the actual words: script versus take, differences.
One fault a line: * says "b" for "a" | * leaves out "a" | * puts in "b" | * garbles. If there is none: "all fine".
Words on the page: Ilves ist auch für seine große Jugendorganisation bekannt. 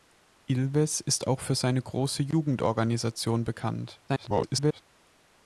* garbles